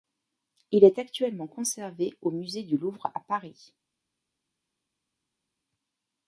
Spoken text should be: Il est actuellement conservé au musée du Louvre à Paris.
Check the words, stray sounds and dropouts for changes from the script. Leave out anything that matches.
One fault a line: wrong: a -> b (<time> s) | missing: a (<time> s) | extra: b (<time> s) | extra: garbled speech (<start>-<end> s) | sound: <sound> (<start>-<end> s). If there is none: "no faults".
no faults